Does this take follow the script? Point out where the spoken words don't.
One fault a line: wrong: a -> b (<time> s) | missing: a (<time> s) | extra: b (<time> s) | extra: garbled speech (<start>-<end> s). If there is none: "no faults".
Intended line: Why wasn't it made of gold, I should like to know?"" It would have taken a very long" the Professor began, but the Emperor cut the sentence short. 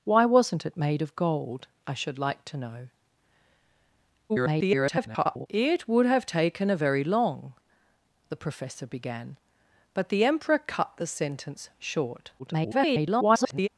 extra: garbled speech (4.3-5.5 s)
extra: garbled speech (12.4-13.7 s)